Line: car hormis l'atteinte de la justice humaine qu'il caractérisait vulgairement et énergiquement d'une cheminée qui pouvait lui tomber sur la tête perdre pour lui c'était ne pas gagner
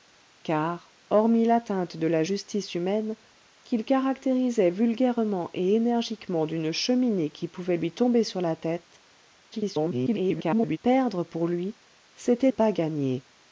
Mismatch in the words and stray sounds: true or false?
true